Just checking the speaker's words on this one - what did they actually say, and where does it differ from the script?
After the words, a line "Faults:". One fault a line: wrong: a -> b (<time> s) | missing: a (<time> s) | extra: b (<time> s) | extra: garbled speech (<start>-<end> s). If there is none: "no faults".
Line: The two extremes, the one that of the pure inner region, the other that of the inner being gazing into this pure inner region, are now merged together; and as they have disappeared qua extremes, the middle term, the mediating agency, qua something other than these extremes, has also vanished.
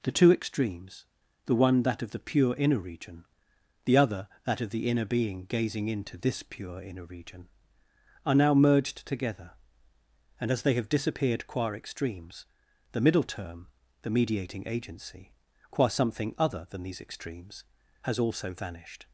The two extremes, the one that of the pure inner region, the other that of the inner being gazing into this pure inner region, are now merged together; and as they have disappeared qua extremes, the middle term, the mediating agency, qua something other than these extremes, has also vanished.
Faults:
no faults